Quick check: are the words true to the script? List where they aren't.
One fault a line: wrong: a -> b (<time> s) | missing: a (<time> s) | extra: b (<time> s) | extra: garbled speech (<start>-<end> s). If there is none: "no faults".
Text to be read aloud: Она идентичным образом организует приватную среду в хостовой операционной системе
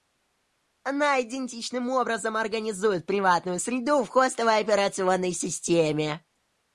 no faults